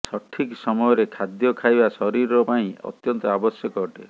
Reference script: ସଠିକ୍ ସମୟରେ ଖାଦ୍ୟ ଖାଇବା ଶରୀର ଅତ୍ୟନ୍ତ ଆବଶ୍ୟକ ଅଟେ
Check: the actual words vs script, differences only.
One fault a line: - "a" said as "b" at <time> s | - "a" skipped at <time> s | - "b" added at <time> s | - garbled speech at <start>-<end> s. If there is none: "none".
- "ପାଇଁ" added at 2.4 s